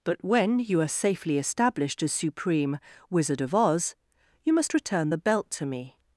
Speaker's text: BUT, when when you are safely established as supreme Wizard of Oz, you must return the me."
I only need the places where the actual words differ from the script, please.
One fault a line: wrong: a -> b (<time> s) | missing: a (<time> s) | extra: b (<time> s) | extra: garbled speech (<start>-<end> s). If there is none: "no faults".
missing: when (0.6 s)
extra: belt to (5.2 s)